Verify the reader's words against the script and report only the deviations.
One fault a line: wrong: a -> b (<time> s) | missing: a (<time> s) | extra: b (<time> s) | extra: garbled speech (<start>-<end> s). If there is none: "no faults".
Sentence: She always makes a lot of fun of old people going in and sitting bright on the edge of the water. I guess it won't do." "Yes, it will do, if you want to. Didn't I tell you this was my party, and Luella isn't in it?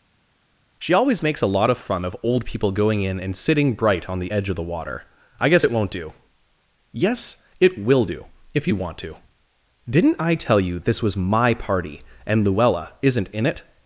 no faults